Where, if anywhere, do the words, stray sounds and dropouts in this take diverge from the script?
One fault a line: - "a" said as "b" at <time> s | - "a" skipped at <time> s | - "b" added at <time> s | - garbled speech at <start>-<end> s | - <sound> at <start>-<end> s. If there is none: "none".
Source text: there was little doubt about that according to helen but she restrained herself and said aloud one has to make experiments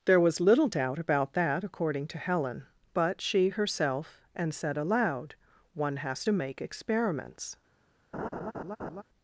- "restrained" skipped at 3.5 s
- laugh at 8.1-9.0 s